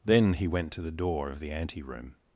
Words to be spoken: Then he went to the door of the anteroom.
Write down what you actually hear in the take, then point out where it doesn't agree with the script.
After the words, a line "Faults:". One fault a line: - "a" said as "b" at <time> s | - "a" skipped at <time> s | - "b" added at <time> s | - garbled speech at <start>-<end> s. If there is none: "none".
Then he went to the door of the anteroom.
Faults:
none